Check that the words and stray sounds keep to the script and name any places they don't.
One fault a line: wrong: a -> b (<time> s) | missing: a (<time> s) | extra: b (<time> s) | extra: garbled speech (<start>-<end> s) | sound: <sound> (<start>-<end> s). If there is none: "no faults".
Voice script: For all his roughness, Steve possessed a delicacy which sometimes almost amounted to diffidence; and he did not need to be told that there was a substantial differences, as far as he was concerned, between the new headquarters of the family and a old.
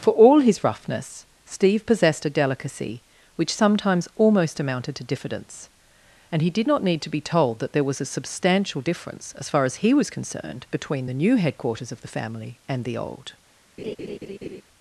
wrong: differences -> difference (8.8 s)
wrong: a -> the (12.8 s)
sound: laugh (13.8-14.6 s)